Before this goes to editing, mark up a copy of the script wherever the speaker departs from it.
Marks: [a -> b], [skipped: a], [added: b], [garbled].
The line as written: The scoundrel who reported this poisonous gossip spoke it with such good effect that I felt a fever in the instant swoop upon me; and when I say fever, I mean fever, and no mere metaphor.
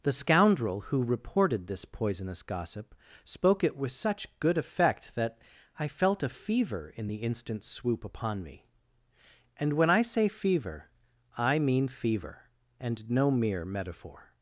The scoundrel who reported this poisonous gossip spoke it with such good effect that I felt a fever in the instant swoop upon me; and when I say fever, I mean fever, and no mere metaphor.